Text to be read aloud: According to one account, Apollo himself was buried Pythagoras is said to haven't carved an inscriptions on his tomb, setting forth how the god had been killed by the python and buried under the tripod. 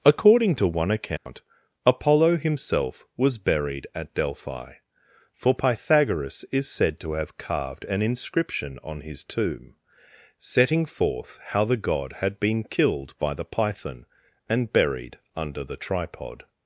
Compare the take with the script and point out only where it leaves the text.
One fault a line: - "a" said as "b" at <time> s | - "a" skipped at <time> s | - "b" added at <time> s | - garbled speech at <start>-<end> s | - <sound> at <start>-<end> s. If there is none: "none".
- dropout at 1.2-1.3 s
- "at Delphi for" added at 3.9 s
- "haven't" said as "have" at 7.1 s
- "inscriptions" said as "inscription" at 8.0 s